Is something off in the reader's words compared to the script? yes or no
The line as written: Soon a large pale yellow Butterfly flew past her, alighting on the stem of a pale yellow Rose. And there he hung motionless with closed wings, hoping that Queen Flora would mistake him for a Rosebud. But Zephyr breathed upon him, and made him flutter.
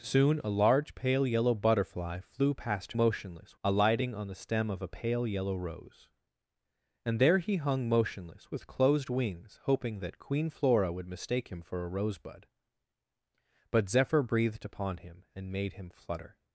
yes